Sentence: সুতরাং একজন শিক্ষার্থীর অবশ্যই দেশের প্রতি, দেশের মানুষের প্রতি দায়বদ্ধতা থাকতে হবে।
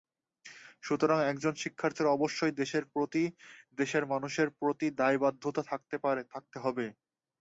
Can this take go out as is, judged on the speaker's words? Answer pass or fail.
pass